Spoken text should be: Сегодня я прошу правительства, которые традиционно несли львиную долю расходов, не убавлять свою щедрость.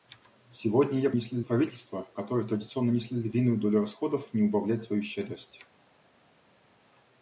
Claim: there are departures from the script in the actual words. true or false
true